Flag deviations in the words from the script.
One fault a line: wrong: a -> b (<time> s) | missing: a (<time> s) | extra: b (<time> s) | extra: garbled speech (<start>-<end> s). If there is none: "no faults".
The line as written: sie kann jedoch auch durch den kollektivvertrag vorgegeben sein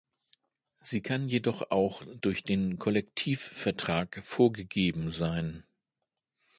no faults